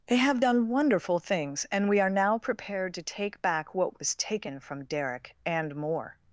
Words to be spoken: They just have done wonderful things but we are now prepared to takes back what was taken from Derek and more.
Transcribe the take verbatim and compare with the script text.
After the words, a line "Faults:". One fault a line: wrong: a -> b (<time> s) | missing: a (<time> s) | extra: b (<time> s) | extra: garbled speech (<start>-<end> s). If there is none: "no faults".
They have done wonderful things and we are now prepared to take back what was taken from Derek and more.
Faults:
missing: just (0.1 s)
wrong: but -> and (1.7 s)
wrong: takes -> take (3.0 s)